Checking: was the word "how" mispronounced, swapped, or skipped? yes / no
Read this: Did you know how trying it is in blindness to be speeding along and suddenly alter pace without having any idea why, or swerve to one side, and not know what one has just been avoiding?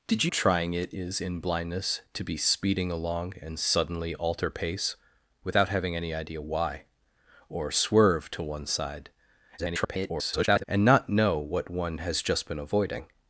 yes